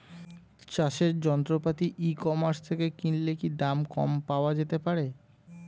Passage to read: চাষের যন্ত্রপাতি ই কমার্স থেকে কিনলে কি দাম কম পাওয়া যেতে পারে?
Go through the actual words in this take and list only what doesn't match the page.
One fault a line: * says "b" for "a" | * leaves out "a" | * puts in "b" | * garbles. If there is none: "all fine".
all fine